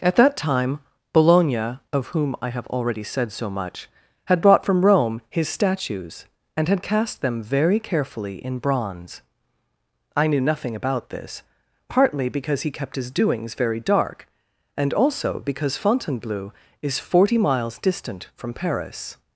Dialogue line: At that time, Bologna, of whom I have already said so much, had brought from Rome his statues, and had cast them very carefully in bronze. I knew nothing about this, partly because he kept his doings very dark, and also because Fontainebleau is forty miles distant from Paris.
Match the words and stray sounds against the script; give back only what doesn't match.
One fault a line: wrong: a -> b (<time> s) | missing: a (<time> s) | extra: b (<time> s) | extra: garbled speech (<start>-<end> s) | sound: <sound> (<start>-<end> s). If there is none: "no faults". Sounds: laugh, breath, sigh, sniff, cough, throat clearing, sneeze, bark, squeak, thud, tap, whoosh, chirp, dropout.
no faults